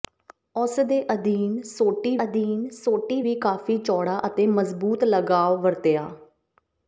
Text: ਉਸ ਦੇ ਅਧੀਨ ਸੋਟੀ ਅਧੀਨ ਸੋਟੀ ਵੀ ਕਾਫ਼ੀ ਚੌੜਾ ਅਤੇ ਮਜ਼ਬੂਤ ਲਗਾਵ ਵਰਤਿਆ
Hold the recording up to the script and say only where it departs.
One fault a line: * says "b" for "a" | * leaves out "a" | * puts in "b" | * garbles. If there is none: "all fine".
all fine